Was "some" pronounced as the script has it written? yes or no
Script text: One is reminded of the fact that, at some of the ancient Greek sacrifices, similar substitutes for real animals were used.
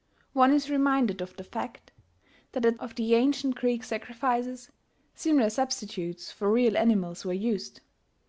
no